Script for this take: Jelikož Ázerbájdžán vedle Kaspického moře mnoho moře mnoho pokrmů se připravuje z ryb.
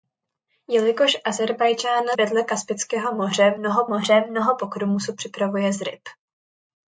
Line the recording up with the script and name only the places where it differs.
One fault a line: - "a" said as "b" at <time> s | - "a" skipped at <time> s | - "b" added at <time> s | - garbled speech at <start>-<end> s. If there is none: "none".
none